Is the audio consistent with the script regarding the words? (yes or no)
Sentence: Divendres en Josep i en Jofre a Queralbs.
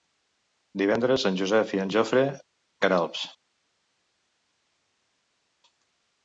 yes